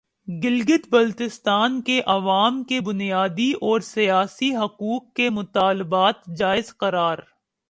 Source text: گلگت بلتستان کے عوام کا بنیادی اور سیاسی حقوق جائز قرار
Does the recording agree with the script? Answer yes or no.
no